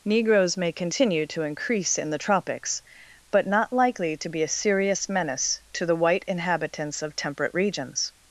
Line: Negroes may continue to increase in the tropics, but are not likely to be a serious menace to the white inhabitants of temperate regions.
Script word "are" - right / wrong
wrong